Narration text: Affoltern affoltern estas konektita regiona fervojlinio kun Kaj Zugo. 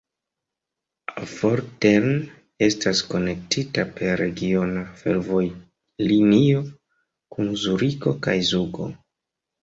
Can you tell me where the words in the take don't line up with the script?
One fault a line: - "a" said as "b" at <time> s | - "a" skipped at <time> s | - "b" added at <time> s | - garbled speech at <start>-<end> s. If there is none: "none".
- "affoltern" skipped at 2.1 s
- "per" added at 4.0 s
- "Zuriko" added at 7.7 s